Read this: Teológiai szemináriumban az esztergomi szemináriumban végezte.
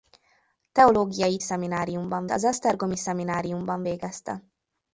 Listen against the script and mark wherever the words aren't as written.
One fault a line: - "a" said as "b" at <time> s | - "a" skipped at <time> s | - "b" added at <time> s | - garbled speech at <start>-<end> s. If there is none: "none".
none